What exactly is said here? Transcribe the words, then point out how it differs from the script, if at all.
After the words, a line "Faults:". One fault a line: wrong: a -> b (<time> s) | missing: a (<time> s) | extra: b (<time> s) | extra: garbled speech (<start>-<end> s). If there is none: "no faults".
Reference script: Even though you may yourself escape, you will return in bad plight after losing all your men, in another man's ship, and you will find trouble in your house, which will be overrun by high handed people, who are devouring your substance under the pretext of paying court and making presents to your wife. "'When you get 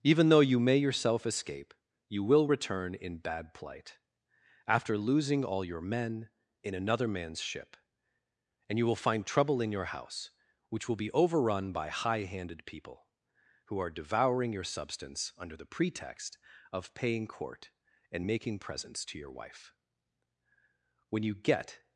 Even though you may yourself escape, you will return in bad plight after losing all your men, in another man's ship, and you will find trouble in your house, which will be overrun by high handed people, who are devouring your substance under the pretext of paying court and making presents to your wife. "'When you get
Faults:
no faults